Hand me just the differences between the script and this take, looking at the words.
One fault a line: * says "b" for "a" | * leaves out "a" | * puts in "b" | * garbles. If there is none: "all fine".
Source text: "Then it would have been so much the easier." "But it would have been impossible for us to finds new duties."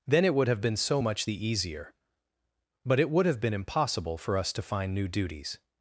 * says "find" for "finds"